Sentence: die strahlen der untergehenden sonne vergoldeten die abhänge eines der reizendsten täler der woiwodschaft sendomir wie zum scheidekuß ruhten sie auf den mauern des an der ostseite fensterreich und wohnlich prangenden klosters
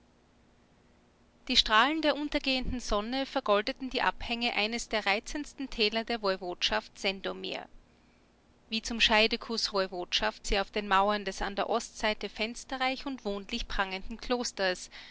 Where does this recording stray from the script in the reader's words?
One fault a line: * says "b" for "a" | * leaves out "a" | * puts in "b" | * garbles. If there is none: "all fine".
* says "woiwodschaft" for "ruhten"